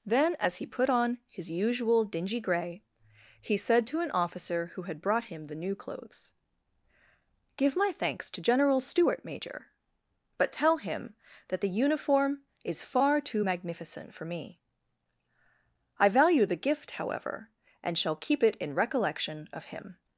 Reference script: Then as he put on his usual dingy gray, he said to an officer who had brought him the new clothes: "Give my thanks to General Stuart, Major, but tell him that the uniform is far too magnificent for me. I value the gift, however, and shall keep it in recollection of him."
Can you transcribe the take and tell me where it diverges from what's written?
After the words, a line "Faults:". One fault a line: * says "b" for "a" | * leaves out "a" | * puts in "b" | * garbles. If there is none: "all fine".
Then as he put on his usual dingy gray, he said to an officer who had brought him the new clothes: "Give my thanks to General Stuart, Major, but tell him that the uniform is far too magnificent for me. I value the gift, however, and shall keep it in recollection of him."
Faults:
all fine